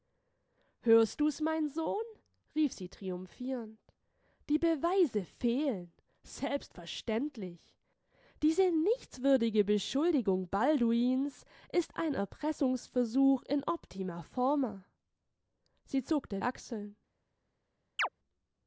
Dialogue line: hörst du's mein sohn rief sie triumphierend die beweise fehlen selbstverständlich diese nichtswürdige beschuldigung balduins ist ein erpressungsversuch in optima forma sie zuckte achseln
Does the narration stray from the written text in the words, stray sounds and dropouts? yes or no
yes